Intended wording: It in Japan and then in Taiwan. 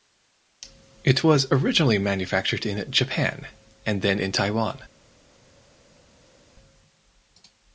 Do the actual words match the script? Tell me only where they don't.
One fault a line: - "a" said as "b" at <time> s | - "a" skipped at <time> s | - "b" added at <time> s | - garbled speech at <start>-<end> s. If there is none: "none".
- "was originally manufactured" added at 1.2 s